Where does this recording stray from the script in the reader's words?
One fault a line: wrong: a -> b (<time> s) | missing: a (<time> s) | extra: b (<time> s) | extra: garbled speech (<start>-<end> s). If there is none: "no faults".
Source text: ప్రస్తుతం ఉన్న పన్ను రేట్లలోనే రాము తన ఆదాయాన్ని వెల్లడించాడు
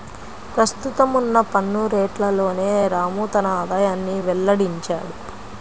no faults